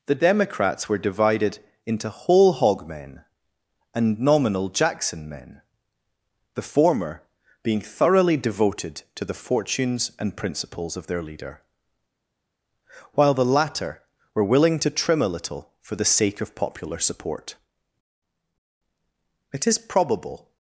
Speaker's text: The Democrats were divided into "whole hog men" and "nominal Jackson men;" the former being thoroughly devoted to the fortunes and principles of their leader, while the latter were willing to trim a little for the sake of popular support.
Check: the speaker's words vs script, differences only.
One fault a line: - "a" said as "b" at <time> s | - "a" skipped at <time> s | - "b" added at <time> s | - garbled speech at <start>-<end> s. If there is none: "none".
- "It is probable" added at 19.5 s